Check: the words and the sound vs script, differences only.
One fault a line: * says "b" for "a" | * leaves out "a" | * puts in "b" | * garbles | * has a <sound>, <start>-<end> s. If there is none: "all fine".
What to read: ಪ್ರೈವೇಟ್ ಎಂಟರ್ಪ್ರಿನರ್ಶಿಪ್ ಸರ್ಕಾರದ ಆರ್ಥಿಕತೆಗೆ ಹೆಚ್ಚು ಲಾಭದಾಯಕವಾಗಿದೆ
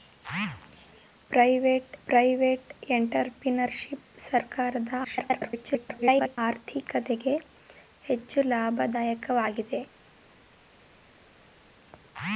* puts in "ಪ್ರೈವೇಟ್"
* garbles